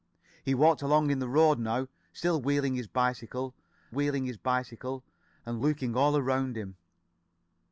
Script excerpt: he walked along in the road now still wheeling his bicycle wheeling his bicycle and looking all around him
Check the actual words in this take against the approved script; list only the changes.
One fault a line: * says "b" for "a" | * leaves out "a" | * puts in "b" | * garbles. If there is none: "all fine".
all fine